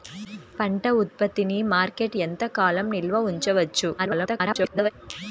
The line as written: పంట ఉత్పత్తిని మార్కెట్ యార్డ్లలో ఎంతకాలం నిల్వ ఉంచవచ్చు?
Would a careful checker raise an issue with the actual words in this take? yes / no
yes